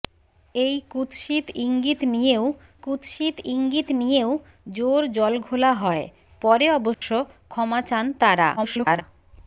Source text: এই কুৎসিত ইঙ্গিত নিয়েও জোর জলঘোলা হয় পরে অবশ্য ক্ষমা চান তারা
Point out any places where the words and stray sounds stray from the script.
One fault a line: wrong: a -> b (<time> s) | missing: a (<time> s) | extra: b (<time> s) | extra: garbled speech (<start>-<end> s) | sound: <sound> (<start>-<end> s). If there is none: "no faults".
extra: কুৎসিত ইঙ্গিত নিয়েও (2.8 s)
sound: dropout (6.9-7.0 s)
extra: garbled speech (8.6-9.0 s)